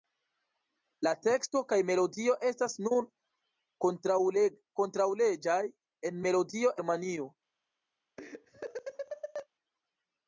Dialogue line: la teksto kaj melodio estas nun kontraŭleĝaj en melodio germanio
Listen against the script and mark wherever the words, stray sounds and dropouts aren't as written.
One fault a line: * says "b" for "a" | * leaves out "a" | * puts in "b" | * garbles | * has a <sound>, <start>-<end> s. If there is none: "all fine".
* has a laugh, 8.2-9.5 s